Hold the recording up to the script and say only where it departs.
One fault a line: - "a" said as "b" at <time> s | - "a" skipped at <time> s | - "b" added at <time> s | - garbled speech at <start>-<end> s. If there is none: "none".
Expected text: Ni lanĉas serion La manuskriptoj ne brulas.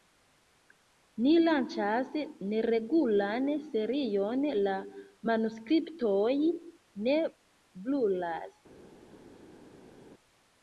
- "neregulan" added at 2.5 s